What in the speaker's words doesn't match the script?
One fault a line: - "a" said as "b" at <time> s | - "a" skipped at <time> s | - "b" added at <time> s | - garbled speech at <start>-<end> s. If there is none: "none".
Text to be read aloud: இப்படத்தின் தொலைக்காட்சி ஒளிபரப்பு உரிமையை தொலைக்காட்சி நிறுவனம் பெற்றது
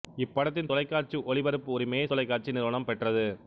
none